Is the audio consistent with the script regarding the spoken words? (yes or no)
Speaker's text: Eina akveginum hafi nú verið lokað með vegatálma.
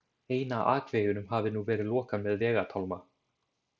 yes